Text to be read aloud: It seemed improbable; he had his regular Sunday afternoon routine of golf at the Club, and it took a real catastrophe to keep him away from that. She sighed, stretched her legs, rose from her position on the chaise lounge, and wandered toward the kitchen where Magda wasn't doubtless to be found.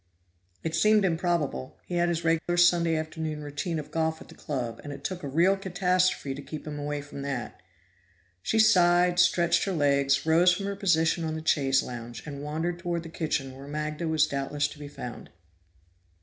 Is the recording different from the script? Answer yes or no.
yes